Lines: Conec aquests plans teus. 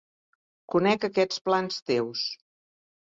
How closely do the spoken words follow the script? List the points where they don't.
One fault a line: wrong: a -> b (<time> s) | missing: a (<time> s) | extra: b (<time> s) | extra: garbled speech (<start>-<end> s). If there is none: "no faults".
no faults